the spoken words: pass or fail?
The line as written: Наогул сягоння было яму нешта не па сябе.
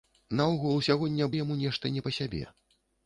fail